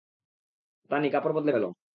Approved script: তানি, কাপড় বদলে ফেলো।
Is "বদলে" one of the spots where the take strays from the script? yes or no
no